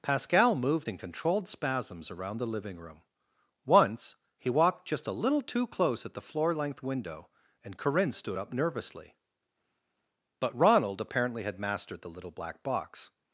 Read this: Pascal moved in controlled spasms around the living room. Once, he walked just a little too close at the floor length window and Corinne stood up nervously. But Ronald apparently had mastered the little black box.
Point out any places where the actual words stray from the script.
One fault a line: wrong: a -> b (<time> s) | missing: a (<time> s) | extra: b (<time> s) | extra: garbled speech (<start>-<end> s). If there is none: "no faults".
no faults